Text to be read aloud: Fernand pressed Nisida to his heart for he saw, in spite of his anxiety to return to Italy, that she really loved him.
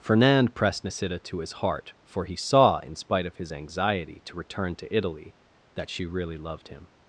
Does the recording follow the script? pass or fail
pass